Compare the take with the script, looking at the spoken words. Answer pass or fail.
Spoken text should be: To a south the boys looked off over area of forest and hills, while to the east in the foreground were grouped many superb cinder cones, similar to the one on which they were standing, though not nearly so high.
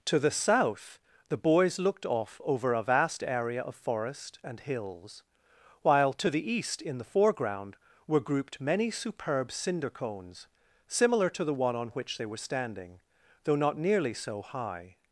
fail